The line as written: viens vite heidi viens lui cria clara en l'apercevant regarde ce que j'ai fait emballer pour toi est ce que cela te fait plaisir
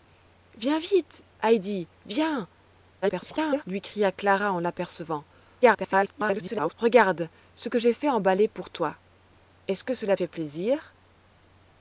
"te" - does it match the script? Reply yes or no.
no